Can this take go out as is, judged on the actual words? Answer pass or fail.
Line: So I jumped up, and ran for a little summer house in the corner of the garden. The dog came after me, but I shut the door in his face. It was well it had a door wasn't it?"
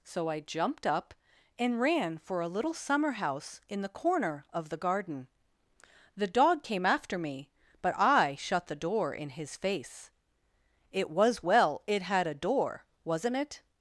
pass